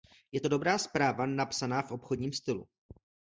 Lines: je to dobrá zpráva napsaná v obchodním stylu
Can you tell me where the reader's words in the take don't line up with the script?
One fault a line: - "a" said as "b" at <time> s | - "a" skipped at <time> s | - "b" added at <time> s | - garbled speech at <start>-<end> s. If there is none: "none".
none